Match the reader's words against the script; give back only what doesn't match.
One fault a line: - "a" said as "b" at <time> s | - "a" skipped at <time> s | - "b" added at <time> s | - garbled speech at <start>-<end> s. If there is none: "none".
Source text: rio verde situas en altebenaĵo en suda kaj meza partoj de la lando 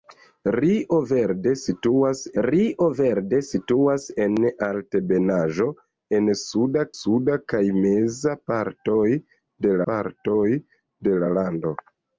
- "rio verde situas" added at 2.4 s
- "suda" added at 7.0 s
- "partoj de" added at 9.9 s